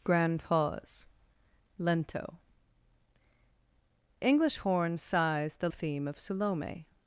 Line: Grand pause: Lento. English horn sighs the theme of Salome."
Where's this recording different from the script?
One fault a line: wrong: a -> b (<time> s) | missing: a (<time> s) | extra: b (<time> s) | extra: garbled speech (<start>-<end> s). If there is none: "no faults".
no faults